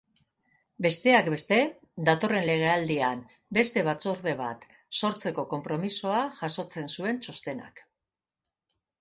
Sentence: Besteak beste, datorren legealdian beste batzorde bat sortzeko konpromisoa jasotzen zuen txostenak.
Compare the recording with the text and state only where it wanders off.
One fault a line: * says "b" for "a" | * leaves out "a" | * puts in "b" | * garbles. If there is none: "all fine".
all fine